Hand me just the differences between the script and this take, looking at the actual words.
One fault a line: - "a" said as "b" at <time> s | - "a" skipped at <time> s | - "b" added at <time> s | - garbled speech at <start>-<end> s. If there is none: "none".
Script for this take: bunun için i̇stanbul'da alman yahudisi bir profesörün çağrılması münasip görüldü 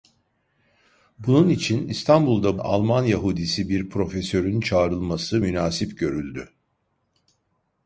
none